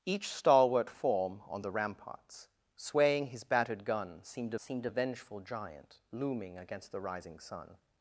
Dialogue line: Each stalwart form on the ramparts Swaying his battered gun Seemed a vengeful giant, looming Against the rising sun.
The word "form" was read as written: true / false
true